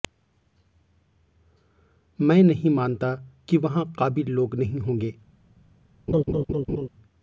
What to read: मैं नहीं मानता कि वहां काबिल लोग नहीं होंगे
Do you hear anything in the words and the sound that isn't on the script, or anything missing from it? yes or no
yes